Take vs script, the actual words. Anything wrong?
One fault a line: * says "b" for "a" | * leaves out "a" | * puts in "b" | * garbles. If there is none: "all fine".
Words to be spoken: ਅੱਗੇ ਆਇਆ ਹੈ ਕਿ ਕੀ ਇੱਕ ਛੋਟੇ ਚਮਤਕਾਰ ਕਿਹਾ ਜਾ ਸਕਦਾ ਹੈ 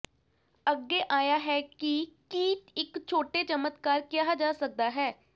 all fine